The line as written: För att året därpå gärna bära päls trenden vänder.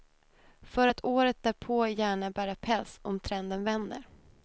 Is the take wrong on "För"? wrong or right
right